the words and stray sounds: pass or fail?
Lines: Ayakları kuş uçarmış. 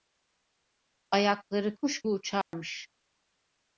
fail